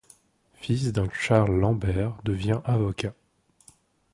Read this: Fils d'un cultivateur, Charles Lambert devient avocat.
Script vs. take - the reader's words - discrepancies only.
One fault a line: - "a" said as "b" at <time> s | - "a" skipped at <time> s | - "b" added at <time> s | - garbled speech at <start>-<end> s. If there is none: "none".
- "cultivateur" skipped at 1.1 s